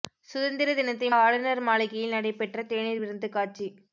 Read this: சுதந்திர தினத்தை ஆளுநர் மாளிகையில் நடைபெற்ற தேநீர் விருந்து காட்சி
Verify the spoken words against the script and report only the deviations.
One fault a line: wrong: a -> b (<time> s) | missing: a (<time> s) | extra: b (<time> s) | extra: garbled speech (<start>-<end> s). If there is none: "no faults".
no faults